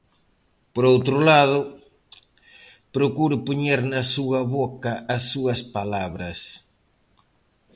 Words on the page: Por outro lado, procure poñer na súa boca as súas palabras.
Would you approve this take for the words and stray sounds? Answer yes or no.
yes